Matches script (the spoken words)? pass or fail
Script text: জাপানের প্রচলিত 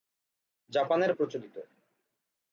pass